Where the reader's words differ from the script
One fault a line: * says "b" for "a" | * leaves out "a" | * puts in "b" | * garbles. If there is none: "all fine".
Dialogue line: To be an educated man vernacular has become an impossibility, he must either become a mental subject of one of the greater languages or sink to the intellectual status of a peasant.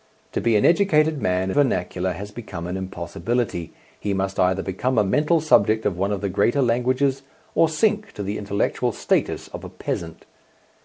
all fine